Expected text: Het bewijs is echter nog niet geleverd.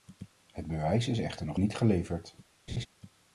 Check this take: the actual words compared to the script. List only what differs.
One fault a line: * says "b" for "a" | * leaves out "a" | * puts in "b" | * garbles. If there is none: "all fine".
all fine